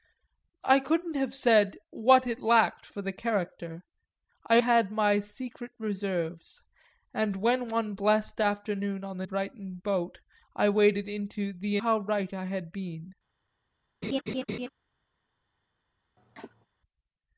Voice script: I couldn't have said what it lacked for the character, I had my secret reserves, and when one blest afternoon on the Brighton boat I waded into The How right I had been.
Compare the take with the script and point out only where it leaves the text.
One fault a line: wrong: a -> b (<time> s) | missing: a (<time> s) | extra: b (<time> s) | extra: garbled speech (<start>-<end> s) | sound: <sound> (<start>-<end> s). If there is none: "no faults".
sound: laugh (14.0-14.7 s)
sound: cough (16.2-16.7 s)